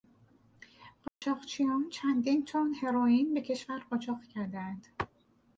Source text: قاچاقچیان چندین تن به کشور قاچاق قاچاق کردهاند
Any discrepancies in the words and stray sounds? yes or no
yes